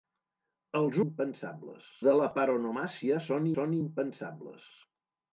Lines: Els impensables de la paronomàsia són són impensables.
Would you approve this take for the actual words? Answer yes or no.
yes